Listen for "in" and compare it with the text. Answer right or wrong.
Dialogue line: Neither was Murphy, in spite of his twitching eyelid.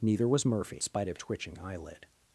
wrong